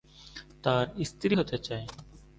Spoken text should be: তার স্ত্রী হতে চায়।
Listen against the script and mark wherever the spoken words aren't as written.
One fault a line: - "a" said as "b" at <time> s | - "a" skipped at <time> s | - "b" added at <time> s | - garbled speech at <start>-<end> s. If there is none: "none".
none